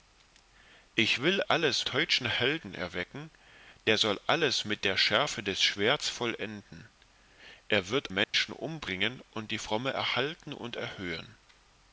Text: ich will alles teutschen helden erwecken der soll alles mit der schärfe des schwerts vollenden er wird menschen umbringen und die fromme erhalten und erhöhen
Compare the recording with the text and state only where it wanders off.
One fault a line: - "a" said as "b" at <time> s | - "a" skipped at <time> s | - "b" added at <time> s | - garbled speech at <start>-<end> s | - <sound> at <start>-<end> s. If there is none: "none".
- dropout at 8.2-8.3 s